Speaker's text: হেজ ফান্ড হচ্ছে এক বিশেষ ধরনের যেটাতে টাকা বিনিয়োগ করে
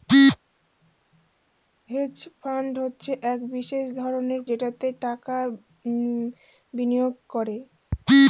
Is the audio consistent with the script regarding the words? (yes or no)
yes